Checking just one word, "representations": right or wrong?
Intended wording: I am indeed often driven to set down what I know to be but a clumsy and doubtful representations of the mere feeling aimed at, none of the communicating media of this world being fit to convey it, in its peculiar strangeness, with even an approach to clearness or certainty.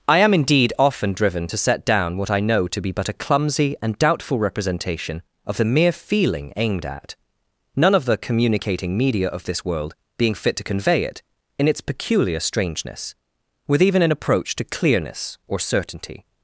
wrong